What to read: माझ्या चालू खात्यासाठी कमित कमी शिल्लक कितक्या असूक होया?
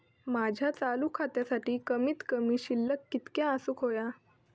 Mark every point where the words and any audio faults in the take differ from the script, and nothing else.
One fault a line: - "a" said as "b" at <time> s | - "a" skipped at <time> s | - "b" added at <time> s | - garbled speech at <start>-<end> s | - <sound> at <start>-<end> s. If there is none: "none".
none